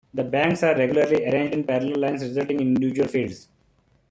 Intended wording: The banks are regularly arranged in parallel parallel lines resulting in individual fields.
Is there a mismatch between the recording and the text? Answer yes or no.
yes